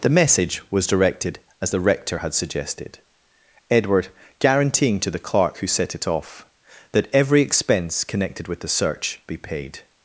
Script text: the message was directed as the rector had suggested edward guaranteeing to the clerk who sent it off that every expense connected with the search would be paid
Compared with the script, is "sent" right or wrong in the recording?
wrong